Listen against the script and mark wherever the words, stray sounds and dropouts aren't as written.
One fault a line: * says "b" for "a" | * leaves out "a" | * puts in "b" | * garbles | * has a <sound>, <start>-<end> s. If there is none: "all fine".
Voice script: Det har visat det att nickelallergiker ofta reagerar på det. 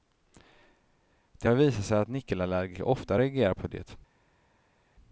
* says "sig" for "det"